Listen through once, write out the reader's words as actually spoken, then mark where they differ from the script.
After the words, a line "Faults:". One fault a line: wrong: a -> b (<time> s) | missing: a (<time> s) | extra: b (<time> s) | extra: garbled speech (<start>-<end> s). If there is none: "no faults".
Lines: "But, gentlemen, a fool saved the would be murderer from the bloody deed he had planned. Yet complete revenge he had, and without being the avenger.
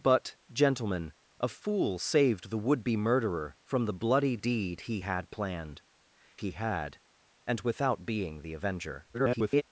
"But, gentlemen, a fool saved the would be murderer from the bloody deed he had planned. He had, and without being the avenger. [garbled]
Faults:
missing: Yet complete revenge (5.8 s)
extra: garbled speech (9.1-9.6 s)